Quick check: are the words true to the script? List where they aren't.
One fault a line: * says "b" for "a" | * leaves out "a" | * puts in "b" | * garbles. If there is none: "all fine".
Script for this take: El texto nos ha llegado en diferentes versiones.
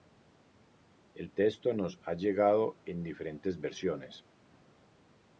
all fine